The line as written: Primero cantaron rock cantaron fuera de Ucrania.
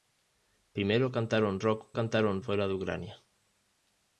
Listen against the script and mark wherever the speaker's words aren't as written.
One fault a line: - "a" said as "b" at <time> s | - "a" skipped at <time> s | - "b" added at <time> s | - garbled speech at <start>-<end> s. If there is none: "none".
none